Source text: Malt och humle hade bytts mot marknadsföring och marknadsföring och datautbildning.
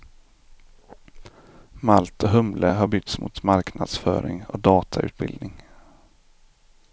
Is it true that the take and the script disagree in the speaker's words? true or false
true